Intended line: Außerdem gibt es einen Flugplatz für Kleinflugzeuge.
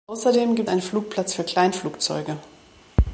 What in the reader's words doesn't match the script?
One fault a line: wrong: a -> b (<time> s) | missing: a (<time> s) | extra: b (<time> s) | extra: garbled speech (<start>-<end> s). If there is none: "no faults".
missing: es (0.7 s)